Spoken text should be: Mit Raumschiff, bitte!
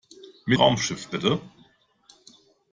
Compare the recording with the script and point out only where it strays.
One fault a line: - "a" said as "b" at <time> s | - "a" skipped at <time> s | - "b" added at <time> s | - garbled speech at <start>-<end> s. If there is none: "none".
none